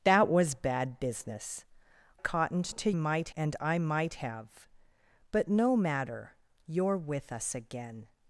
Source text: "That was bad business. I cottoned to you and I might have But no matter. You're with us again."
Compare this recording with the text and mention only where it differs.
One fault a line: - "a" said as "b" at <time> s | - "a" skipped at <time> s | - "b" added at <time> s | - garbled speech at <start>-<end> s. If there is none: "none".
- "I" skipped at 1.6 s
- "you" said as "might" at 2.9 s